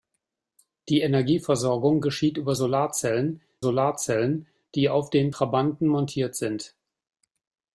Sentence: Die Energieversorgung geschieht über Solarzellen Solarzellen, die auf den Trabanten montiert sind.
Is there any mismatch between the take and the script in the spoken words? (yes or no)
no